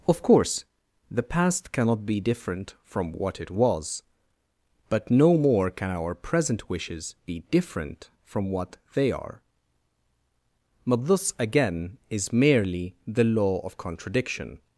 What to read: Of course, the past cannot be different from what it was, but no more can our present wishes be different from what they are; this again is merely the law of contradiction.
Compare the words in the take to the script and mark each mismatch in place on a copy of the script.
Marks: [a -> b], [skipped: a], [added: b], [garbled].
Of course, the past cannot be different from what it was, but no more can our present wishes be different from what they are; [added: but] this again is merely the law of contradiction.